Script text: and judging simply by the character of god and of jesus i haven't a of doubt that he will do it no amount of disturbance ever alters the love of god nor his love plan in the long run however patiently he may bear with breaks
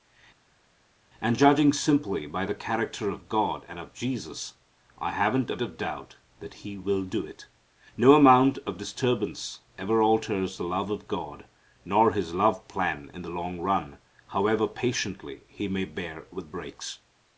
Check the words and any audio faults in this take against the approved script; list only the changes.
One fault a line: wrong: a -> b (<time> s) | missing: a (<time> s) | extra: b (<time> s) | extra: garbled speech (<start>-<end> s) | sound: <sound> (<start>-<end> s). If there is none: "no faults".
no faults